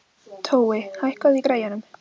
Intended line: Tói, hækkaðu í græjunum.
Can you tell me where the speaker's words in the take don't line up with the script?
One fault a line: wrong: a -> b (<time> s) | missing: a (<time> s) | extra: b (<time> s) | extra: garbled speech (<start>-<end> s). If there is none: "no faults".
no faults